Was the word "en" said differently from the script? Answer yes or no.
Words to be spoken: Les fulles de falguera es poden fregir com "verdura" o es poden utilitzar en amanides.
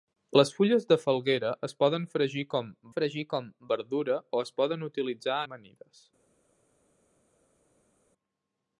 yes